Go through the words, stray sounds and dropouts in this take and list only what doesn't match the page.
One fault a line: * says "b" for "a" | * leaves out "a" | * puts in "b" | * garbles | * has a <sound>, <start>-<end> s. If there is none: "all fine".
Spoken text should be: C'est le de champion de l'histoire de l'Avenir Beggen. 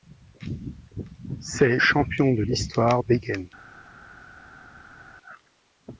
* leaves out "le de"
* leaves out "de l'Avenir"